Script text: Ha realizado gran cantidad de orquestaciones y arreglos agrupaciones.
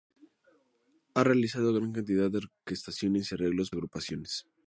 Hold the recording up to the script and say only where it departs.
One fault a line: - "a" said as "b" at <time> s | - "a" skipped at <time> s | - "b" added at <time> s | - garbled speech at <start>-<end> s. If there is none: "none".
none